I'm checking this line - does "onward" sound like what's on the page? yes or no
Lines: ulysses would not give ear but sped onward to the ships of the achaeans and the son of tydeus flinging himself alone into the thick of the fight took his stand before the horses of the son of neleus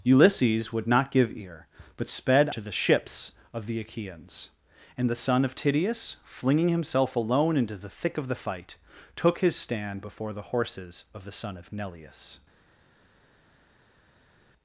no